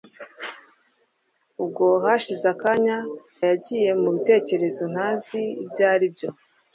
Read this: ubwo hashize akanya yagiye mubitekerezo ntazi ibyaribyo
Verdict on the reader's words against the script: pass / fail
pass